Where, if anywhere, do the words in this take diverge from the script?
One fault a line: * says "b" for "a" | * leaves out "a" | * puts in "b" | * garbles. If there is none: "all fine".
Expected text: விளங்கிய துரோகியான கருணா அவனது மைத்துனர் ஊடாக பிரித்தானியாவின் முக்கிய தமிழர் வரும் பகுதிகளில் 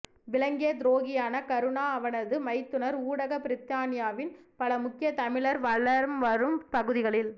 * puts in "பல"
* puts in "வலம்"